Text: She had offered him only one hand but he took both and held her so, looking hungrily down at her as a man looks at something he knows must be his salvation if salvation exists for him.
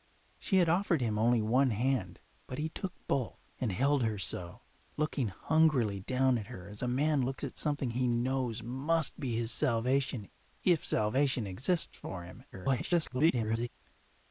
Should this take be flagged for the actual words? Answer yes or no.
yes